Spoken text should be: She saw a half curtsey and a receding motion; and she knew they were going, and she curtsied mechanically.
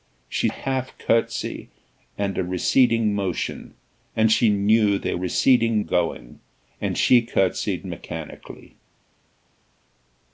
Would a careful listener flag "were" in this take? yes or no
yes